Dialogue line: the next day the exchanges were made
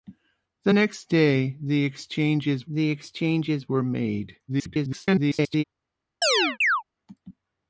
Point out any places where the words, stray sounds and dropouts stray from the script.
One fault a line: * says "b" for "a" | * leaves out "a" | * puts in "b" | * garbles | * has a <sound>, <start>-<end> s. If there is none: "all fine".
* puts in "the exchanges"
* garbles
* has a chirp, 6.2-6.8 s